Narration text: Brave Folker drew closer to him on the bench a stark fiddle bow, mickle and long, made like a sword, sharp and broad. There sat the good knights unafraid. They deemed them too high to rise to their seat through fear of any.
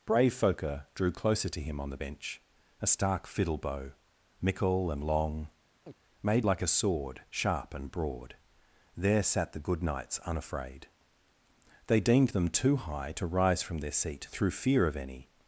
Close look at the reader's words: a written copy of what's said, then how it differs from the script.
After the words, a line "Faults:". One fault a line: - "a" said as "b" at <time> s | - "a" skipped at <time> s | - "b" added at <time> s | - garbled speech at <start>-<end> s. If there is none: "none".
Brave Folker drew closer to him on the bench a stark fiddle bow, mickle and long, made like a sword, sharp and broad. There sat the good knights unafraid. They deemed them too high to rise from their seat through fear of any.
Faults:
- "to" said as "from" at 13.6 s